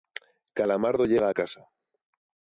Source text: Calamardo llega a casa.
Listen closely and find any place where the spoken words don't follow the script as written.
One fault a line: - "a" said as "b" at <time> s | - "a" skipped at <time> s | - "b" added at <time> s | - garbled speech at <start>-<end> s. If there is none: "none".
none